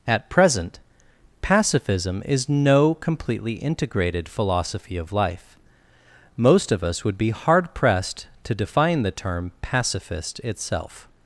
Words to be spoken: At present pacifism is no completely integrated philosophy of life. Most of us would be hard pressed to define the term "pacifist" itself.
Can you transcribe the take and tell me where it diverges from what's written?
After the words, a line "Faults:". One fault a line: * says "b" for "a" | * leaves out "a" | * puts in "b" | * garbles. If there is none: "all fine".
At present pacifism is no completely integrated philosophy of life. Most of us would be hard pressed to define the term "pacifist" itself.
Faults:
all fine